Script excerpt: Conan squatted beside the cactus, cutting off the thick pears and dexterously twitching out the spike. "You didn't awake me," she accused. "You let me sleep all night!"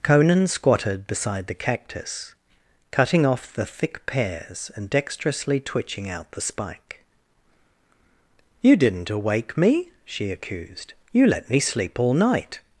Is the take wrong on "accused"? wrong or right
right